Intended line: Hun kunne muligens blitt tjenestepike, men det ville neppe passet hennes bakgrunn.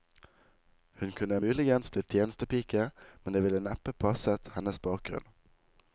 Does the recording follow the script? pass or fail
pass